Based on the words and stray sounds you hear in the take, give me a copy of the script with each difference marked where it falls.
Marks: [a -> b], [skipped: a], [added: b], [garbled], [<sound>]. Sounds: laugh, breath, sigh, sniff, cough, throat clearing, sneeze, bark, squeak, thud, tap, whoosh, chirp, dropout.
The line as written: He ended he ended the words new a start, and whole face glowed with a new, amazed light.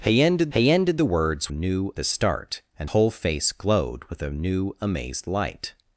He ended he ended the words new a start, and whole face glowed with a new, amazed light.